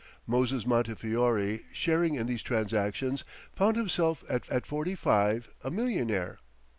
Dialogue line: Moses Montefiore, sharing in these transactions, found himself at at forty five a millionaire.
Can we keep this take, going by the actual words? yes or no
yes